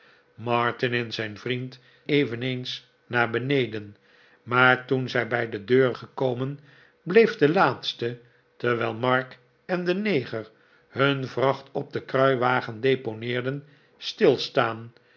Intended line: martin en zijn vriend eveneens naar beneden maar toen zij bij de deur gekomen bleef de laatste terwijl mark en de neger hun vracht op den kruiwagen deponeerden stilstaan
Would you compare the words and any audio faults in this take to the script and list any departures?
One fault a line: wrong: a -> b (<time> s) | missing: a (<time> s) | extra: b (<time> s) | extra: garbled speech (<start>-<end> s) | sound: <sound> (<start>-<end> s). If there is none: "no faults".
no faults